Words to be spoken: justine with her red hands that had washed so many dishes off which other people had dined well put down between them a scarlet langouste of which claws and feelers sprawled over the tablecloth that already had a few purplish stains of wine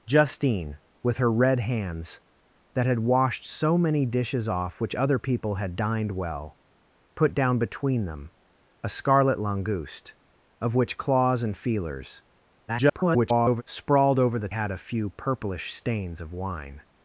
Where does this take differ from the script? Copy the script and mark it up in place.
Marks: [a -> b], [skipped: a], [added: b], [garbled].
justine with her red hands that had washed so many dishes off which other people had dined well put down between them a scarlet langouste of which claws and feelers [garbled] sprawled over the [skipped: tablecloth that already] had a few purplish stains of wine